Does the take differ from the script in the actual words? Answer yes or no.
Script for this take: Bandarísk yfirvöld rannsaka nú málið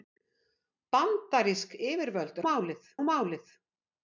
yes